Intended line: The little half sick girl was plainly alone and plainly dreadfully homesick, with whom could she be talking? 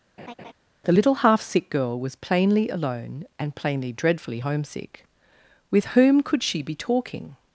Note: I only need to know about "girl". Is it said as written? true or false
true